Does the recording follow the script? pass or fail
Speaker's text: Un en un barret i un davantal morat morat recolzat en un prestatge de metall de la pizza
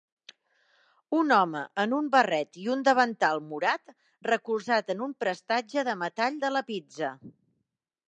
fail